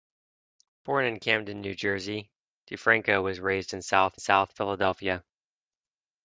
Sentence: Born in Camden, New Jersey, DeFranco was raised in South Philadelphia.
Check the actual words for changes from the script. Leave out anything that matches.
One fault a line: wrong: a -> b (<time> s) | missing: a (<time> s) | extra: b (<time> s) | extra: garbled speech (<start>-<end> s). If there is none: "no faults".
extra: South (4.2 s)